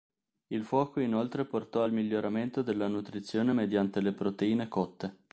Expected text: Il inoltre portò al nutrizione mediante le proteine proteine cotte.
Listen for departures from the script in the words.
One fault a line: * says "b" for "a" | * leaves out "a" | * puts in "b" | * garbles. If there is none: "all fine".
* puts in "fuoco"
* puts in "miglioramento della"
* leaves out "proteine"